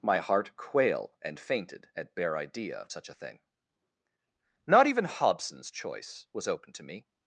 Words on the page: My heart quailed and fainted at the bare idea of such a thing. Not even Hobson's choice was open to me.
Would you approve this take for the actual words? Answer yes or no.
no